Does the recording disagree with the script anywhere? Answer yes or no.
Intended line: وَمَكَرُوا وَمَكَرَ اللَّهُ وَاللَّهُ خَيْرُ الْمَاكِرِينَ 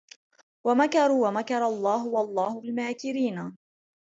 yes